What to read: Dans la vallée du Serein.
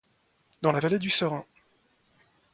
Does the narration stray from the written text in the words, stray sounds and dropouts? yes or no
no